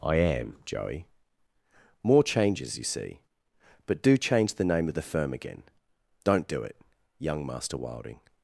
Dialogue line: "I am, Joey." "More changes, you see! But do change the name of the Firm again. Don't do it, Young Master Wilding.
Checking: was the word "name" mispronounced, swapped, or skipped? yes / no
no